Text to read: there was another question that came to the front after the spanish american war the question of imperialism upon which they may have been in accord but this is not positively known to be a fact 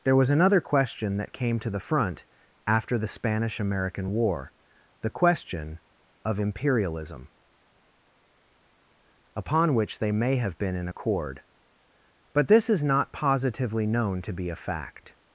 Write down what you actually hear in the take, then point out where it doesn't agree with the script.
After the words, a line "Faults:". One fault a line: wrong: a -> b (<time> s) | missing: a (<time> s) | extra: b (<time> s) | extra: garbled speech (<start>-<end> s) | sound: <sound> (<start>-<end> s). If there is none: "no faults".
there was another question that came to the front after the spanish american war the question of imperialism upon which they may have been in accord but this is not positively known to be a fact
Faults:
no faults